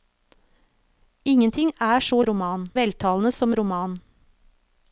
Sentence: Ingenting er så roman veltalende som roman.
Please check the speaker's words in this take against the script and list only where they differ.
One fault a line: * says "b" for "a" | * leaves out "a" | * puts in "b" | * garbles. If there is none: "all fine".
all fine